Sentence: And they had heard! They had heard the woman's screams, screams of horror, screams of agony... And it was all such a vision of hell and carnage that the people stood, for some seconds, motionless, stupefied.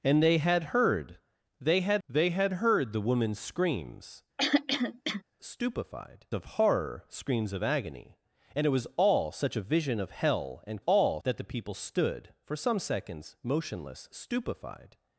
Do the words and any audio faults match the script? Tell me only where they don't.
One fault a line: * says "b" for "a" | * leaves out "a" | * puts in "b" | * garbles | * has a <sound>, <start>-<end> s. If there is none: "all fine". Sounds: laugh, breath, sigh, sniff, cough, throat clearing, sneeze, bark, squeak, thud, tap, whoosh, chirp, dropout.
* puts in "they had"
* has a throat clearing, 4.4-5.2 s
* says "stupefied" for "screams"
* says "all" for "carnage"